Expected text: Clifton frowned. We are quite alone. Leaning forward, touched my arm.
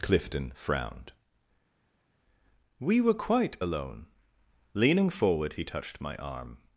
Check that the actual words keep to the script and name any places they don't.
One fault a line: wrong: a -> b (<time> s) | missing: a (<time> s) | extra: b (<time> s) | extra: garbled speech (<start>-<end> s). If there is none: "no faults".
wrong: are -> were (3.0 s)
extra: he (5.5 s)